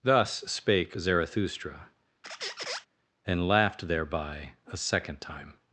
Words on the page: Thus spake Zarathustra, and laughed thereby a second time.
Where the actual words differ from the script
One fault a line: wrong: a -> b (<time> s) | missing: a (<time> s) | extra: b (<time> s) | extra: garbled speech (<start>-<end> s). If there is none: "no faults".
no faults